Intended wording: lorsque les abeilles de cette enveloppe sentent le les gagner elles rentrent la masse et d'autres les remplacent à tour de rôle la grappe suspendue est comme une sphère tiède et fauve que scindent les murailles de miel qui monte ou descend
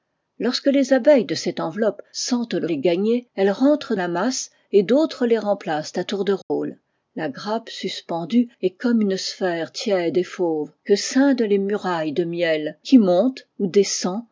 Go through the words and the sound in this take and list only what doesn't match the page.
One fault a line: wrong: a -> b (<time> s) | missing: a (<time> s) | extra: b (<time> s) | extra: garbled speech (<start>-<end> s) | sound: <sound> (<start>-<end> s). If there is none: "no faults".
sound: dropout (6.4-6.5 s)